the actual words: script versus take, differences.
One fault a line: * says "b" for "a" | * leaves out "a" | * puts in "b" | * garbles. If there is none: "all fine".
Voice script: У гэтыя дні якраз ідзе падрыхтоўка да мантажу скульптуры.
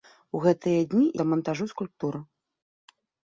* leaves out "якраз ідзе падрыхтоўка"